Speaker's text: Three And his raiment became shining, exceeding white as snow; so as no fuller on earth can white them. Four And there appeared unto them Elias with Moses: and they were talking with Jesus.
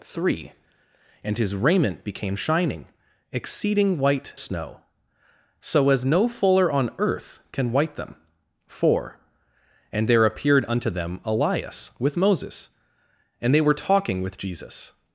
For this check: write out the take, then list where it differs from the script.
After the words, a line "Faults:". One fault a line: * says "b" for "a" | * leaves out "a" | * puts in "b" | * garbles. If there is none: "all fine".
Three And his raiment became shining, exceeding white snow; so as no fuller on earth can white them. Four And there appeared unto them Elias with Moses: and they were talking with Jesus.
Faults:
* leaves out "as"